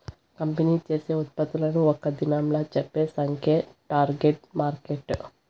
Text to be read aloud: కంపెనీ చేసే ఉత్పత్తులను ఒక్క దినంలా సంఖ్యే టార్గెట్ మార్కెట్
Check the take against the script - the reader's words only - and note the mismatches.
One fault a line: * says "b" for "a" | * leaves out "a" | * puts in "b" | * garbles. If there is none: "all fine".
* puts in "చెప్పే"